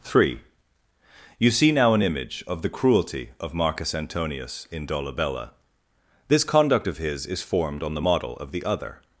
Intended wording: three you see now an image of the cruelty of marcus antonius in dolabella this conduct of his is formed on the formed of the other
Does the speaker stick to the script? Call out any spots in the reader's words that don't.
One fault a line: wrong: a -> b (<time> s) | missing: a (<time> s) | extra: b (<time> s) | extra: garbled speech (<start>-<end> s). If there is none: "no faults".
wrong: formed -> model (8.0 s)